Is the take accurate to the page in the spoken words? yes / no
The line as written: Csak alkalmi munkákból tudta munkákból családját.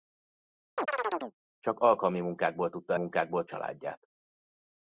yes